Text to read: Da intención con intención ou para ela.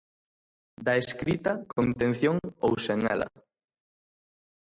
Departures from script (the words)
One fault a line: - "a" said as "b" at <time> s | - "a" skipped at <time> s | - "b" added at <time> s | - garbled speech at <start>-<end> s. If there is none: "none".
- "intención" said as "escrita" at 1.0 s
- "para" said as "sen" at 2.8 s